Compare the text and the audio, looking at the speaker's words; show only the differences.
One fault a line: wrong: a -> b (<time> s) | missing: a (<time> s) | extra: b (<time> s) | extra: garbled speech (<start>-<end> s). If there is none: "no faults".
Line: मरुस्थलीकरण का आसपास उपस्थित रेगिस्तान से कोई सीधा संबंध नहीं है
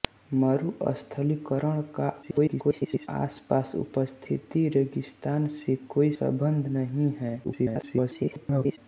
extra: garbled speech (2.2-3.1 s)
missing: सीधा (6.1 s)
extra: garbled speech (7.4-8.8 s)